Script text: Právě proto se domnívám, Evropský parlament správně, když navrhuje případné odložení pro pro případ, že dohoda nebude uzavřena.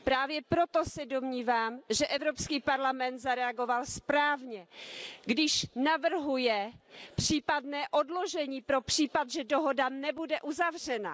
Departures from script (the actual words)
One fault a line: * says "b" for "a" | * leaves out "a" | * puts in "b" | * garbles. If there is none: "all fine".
* puts in "že"
* puts in "zareagoval"
* leaves out "pro"